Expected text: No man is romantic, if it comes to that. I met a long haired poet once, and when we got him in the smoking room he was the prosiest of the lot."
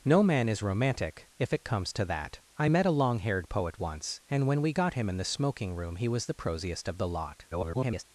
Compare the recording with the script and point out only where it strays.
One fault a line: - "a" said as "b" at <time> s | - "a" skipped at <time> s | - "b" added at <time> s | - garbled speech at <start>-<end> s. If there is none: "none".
- garbled speech at 7.5-8.0 s